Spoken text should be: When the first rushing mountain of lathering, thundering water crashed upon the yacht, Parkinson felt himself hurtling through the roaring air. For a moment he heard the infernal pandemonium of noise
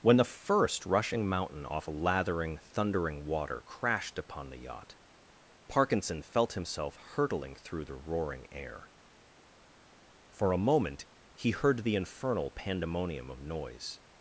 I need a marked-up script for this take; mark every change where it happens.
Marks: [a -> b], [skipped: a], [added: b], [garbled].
When the first rushing mountain [of -> off] lathering, thundering water crashed upon the yacht, Parkinson felt himself hurtling through the roaring air. For a moment he heard the infernal pandemonium of noise